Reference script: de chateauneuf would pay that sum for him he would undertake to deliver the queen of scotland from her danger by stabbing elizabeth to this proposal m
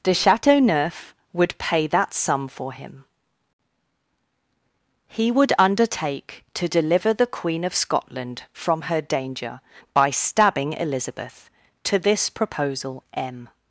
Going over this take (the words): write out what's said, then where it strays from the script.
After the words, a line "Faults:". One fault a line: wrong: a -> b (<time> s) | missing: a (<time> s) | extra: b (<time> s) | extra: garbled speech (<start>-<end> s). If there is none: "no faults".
de chateauneuf would pay that sum for him he would undertake to deliver the queen of scotland from her danger by stabbing elizabeth to this proposal m
Faults:
no faults